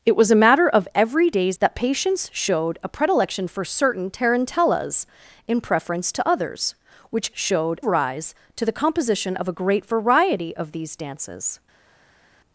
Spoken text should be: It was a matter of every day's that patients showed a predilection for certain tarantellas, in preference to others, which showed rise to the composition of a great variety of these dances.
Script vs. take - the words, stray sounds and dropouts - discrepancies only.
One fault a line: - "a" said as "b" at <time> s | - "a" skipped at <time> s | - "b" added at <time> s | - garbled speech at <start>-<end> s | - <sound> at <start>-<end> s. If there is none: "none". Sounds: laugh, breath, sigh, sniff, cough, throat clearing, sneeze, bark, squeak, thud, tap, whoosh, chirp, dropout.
none